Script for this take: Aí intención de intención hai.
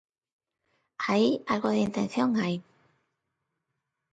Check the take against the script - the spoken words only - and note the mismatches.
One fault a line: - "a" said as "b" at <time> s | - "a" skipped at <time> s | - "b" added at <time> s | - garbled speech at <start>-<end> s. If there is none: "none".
- "intención" said as "algo" at 1.5 s